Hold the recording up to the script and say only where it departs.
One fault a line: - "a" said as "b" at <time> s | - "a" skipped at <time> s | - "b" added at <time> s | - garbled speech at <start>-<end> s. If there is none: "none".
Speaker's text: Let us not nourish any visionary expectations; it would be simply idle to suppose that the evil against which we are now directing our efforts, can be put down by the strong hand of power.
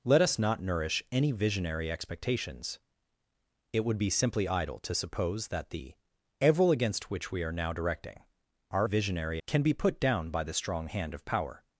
- "efforts" said as "visionary" at 8.8 s